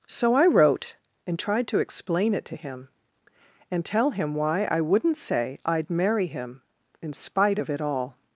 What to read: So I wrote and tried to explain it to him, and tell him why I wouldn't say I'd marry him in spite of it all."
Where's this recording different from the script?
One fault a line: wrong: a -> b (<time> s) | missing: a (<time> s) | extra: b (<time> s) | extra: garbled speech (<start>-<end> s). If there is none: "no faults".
no faults